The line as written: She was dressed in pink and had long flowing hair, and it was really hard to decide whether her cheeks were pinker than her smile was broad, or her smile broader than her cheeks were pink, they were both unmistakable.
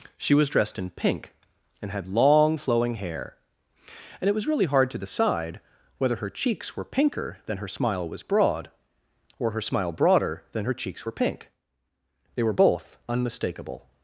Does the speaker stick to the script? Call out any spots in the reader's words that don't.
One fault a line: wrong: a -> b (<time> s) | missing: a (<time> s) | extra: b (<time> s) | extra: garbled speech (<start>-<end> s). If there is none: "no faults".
no faults